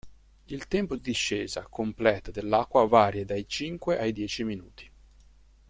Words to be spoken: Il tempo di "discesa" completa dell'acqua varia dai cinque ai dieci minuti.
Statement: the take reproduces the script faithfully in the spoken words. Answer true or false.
true